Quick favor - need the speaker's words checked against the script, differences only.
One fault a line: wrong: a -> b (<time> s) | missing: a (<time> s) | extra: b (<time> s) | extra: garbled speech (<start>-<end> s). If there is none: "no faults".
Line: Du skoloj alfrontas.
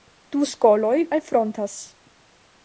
no faults